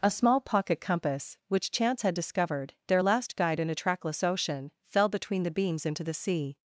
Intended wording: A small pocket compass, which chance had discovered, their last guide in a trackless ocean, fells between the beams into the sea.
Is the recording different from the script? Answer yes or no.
yes